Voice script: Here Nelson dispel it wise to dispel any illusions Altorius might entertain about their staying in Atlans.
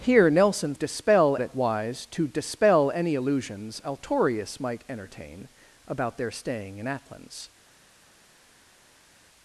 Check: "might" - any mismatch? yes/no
no